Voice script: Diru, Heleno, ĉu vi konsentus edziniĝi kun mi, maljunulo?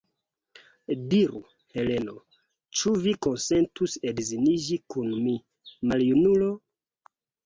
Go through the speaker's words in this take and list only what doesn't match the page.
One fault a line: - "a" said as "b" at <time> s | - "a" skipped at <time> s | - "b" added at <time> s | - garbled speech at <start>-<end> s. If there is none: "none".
none